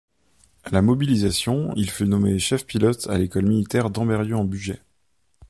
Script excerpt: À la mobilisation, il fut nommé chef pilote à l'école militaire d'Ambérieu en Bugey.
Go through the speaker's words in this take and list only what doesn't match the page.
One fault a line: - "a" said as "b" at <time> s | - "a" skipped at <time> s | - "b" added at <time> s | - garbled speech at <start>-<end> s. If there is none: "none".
none